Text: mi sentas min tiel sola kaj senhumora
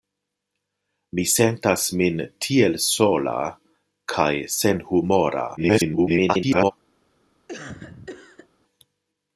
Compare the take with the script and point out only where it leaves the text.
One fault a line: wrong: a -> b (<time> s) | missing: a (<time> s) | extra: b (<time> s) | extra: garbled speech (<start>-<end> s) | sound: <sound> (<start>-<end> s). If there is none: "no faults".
extra: garbled speech (5.6-6.7 s)
sound: cough (7.5-8.5 s)